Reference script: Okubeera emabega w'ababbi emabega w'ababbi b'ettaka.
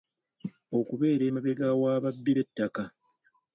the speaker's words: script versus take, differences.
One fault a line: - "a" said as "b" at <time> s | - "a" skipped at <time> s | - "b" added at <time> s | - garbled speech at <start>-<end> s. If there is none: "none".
- "emabega w'ababbi" skipped at 2.3 s